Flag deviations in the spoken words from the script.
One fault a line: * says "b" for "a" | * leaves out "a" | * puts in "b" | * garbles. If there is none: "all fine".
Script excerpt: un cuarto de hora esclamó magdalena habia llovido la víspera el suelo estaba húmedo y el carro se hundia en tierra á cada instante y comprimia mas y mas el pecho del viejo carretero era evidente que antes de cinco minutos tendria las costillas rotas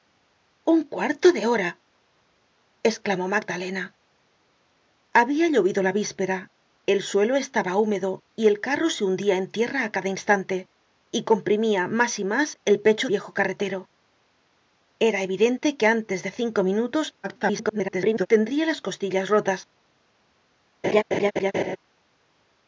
* leaves out "del"
* garbles